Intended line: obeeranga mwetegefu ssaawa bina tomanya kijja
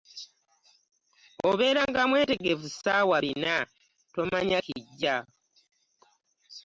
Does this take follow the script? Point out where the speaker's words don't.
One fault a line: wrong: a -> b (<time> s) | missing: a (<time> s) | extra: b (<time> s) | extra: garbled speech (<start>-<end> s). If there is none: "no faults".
no faults